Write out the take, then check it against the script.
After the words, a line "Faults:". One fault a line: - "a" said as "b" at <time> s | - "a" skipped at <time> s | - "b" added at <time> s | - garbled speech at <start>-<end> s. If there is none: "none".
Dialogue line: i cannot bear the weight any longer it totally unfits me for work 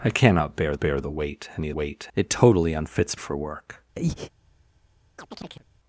i cannot bear bear the weight any weight it totally unfits for work
Faults:
- "bear" added at 0.8 s
- "longer" said as "weight" at 1.7 s
- "me" skipped at 3.2 s